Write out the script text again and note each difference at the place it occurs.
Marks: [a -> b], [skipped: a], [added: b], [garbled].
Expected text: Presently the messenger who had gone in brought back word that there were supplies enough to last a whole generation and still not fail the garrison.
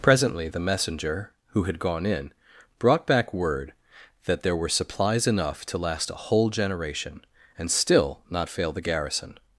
Presently the messenger who had gone in brought back word that there were supplies enough to last a whole generation and still not fail the garrison.